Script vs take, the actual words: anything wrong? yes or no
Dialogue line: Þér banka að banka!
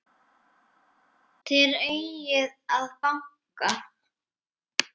yes